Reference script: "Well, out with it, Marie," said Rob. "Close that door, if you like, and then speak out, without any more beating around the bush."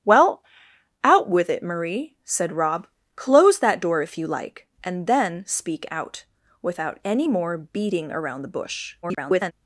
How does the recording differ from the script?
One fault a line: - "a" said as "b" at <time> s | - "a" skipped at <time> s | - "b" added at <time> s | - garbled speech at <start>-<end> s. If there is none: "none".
- garbled speech at 9.0-9.5 s